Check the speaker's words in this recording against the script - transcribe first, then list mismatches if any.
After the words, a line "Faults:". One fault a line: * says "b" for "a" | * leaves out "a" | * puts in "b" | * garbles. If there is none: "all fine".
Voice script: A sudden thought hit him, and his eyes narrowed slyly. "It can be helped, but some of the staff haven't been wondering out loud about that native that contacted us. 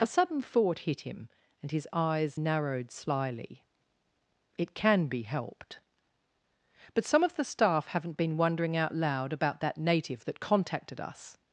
A sudden thought hit him, and his eyes narrowed slyly. "It can be helped, but some of the staff haven't been wondering out loud about that native that contacted us.
Faults:
all fine